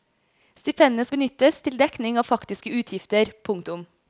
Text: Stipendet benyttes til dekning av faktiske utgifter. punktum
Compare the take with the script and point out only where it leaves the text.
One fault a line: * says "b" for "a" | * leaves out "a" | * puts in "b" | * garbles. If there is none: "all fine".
all fine